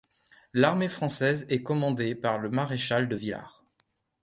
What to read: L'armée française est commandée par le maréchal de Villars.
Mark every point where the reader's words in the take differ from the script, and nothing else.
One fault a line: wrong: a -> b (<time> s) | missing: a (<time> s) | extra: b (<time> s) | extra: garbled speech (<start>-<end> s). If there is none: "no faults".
no faults